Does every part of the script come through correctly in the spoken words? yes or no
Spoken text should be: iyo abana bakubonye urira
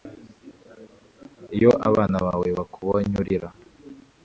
no